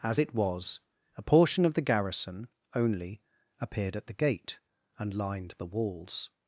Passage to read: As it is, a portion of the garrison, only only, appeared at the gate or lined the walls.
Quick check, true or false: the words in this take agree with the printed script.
false